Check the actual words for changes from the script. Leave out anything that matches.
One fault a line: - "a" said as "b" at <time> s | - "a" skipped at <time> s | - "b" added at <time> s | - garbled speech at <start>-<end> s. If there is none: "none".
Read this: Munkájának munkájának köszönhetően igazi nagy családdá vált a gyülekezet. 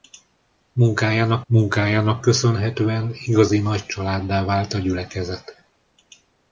none